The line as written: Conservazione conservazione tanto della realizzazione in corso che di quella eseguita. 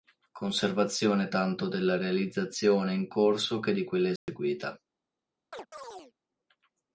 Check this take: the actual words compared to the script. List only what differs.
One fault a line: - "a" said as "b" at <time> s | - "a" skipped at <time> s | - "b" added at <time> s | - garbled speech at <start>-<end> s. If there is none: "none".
- "conservazione" skipped at 1.3 s